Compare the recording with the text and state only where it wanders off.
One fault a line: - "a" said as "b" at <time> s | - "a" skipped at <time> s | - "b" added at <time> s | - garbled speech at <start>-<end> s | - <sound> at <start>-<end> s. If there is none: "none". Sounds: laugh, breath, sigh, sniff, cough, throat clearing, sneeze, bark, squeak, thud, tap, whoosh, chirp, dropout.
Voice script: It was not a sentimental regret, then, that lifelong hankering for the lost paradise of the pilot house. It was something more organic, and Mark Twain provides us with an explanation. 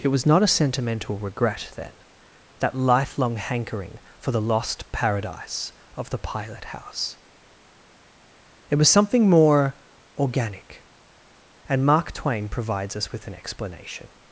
none